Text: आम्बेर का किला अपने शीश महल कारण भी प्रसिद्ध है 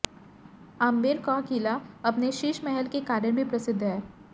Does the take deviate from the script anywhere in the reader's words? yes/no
yes